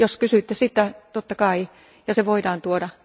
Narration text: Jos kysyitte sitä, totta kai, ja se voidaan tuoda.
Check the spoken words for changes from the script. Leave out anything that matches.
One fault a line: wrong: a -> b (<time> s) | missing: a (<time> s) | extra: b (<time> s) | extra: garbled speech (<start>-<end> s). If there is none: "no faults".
no faults